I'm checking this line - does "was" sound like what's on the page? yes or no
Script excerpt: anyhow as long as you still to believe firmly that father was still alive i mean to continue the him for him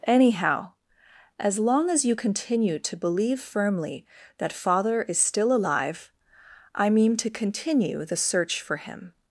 no